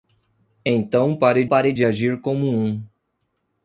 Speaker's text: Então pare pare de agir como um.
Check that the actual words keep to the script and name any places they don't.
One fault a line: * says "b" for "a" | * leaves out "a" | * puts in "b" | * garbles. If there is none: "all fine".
all fine